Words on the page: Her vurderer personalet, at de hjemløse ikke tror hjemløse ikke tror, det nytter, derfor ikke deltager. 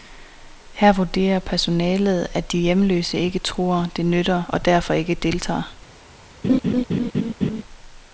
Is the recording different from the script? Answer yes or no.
yes